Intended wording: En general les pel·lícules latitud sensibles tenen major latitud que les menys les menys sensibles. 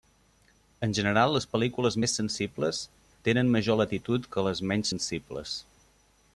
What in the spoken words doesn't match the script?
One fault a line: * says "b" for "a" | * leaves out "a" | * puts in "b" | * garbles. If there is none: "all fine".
* says "més" for "latitud"
* leaves out "les menys"